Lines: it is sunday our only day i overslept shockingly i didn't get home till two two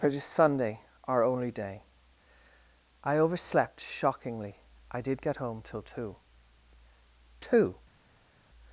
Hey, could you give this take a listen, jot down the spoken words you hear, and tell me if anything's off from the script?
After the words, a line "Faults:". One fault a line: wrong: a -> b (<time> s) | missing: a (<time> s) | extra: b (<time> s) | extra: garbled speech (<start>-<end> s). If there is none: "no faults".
it is sunday our only day i overslept shockingly i did get home till two two
Faults:
wrong: didn't -> did (5.0 s)